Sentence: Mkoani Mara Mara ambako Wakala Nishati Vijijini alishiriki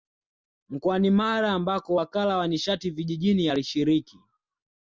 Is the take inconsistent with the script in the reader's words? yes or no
yes